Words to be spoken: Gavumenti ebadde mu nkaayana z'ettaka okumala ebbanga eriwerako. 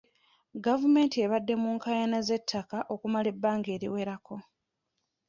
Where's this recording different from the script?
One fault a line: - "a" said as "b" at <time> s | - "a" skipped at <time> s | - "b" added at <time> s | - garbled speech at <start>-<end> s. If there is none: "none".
none